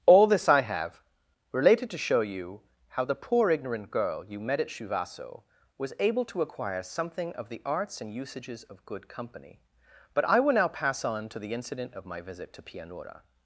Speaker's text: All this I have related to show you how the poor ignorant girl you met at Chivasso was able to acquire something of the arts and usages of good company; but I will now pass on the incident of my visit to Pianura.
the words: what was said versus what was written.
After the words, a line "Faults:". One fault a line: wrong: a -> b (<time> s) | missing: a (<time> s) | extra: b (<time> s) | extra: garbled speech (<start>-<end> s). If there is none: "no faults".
All this I have related to show you how the poor ignorant girl you met at Chivasso was able to acquire something of the arts and usages of good company; but I will now pass on to the incident of my visit to Pianura.
Faults:
extra: to (11.3 s)